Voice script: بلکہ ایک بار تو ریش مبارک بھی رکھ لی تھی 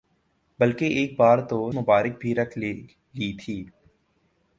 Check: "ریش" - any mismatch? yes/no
yes